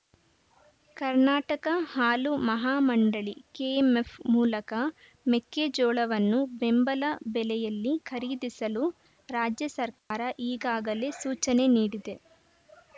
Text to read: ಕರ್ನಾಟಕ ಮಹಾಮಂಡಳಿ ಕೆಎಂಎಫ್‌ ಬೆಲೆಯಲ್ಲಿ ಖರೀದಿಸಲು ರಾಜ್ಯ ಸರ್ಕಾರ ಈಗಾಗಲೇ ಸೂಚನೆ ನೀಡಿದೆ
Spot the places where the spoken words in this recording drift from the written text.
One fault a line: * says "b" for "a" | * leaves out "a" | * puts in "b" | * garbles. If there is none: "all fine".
* puts in "ಹಾಲು"
* puts in "ಮೂಲಕ ಮೆಕ್ಕೆಜೋಳವನ್ನು ಬೆಂಬಲ"